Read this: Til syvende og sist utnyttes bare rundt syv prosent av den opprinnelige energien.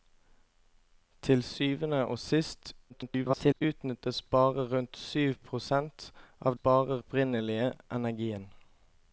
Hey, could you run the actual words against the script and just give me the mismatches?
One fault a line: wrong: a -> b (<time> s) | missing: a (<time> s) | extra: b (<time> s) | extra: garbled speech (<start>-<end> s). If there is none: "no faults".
extra: garbled speech (2.9-3.6 s)
wrong: den -> bare (6.5 s)